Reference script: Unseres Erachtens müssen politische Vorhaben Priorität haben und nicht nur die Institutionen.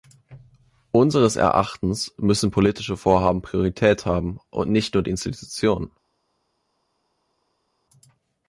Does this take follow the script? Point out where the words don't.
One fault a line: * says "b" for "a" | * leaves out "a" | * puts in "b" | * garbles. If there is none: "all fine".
all fine